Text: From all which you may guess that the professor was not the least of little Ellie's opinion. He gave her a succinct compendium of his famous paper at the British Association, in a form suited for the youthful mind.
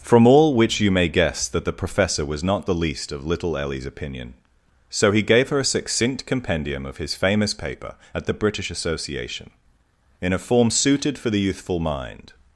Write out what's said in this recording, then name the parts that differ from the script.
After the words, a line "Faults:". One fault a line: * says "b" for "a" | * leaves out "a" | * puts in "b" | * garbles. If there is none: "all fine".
From all which you may guess that the professor was not the least of little Ellie's opinion. So he gave her a succinct compendium of his famous paper at the British Association, in a form suited for the youthful mind.
Faults:
* puts in "So"